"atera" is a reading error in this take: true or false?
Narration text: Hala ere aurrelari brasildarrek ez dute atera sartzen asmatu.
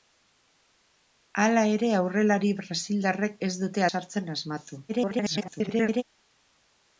true